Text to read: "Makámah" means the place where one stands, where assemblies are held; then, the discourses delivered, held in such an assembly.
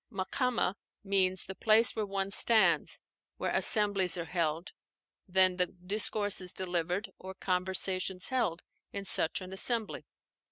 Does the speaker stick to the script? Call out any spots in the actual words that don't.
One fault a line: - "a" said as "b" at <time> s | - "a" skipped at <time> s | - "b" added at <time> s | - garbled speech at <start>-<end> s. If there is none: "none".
- "or conversations" added at 7.2 s